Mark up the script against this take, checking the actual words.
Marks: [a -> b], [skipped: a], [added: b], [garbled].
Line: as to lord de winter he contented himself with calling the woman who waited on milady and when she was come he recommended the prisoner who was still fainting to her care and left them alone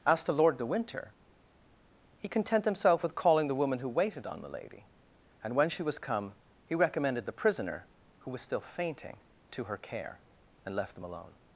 as to lord de winter he [contented -> content] himself with calling the woman who waited on milady and when she was come he recommended the prisoner who was still fainting to her care and left them alone